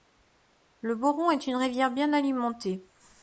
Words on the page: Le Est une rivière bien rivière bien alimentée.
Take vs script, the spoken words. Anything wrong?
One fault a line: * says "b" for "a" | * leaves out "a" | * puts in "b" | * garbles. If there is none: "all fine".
* puts in "Boron"
* leaves out "rivière bien"